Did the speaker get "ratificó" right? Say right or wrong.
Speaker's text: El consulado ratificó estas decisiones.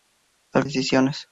wrong